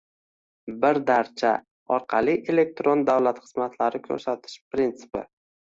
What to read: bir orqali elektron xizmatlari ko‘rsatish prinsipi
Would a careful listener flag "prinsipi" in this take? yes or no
no